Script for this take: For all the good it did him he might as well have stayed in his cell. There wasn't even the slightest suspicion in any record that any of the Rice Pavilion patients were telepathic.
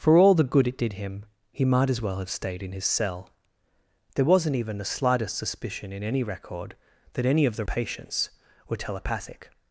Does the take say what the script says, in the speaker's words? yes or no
no